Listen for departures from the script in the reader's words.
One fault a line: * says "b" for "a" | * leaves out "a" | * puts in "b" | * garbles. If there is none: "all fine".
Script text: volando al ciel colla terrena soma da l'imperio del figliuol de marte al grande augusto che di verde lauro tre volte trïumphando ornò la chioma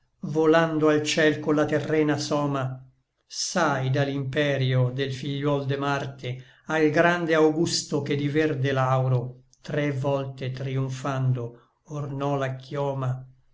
* puts in "sai"